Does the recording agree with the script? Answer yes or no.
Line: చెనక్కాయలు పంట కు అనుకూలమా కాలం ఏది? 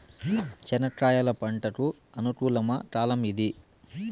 yes